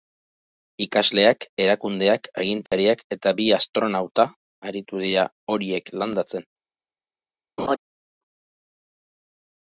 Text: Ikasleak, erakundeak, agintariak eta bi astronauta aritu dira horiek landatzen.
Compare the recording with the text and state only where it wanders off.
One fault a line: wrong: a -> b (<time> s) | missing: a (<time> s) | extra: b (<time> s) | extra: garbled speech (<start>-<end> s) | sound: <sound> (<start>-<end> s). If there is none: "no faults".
sound: dropout (2.7-2.7 s)
sound: laugh (7.6-7.8 s)